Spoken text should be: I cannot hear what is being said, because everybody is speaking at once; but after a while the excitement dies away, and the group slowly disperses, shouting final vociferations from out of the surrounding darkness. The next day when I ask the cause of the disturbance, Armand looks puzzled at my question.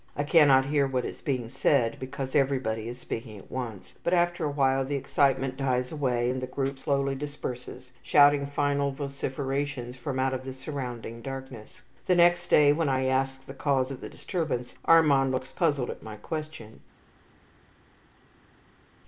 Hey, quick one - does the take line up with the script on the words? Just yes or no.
yes